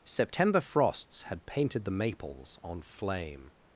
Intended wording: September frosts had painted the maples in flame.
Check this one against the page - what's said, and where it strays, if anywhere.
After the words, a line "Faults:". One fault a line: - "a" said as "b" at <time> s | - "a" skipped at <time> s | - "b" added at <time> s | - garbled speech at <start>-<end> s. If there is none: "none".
September frosts had painted the maples on flame.
Faults:
- "in" said as "on" at 2.6 s